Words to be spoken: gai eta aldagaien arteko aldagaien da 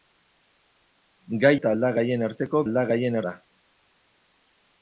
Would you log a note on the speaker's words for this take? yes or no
no